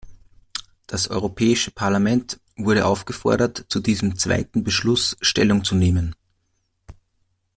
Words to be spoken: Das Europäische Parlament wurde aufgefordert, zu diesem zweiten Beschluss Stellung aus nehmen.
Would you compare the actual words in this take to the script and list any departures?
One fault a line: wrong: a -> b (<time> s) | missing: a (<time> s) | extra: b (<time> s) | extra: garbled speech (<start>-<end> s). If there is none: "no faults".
wrong: aus -> zu (5.6 s)